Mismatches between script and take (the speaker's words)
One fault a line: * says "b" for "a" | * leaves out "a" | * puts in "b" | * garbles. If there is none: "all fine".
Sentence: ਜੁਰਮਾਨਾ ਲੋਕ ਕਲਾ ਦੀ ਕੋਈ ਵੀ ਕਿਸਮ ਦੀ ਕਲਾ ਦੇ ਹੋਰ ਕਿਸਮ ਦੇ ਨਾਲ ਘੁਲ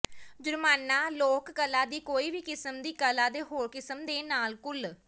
all fine